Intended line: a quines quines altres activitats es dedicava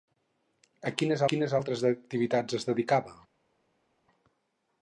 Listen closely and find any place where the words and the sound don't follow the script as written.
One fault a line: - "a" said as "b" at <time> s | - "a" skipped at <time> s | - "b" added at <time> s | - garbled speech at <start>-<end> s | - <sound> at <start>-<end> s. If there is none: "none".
none